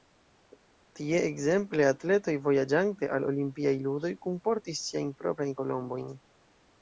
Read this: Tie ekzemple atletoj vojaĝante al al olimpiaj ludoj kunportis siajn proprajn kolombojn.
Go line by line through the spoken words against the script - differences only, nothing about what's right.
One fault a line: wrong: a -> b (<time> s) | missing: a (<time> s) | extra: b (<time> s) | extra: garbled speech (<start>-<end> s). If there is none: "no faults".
missing: al (3.3 s)